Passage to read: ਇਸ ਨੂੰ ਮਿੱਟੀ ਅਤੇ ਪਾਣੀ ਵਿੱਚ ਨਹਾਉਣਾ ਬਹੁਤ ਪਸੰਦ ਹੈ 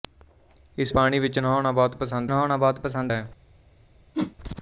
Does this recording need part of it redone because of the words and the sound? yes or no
yes